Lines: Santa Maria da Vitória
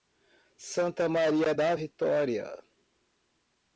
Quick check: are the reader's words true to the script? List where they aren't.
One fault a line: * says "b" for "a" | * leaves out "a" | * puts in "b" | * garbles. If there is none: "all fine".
all fine